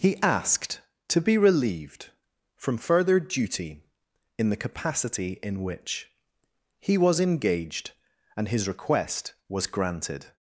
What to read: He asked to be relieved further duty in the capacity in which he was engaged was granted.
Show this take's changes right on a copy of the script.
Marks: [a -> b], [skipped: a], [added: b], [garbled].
He asked to be relieved [added: from] further duty in the capacity in which he was engaged [added: and his request] was granted.